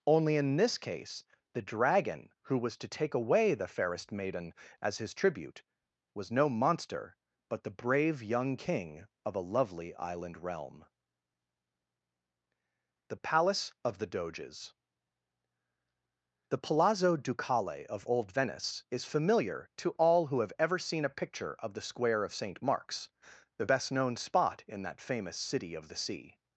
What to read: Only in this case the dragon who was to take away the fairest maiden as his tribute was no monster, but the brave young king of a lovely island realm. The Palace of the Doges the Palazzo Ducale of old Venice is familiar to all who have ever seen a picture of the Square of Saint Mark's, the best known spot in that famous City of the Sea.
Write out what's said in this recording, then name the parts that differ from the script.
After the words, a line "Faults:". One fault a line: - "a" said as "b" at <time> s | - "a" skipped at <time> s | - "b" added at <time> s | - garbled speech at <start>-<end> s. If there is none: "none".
Only in this case the dragon who was to take away the fairest maiden as his tribute was no monster, but the brave young king of a lovely island realm. The Palace of the Doges the Palazzo Ducale of old Venice is familiar to all who have ever seen a picture of the Square of Saint Mark's, the best known spot in that famous City of the Sea.
Faults:
none